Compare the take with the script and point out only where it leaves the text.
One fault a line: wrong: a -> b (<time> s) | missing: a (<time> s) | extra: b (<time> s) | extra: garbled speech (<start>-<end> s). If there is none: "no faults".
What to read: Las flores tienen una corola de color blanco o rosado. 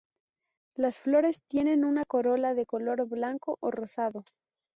no faults